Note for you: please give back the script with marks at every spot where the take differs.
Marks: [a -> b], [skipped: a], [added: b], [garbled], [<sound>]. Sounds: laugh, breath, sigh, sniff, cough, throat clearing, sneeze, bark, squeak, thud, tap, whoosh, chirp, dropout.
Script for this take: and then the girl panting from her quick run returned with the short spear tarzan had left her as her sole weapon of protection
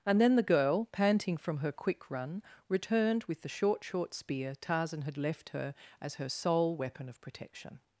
and then the girl panting from her quick run returned with the short [added: short] spear tarzan had left her as her sole weapon of protection